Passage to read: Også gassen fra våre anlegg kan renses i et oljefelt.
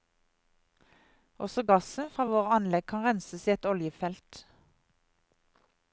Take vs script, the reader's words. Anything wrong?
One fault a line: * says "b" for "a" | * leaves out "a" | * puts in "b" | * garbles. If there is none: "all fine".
all fine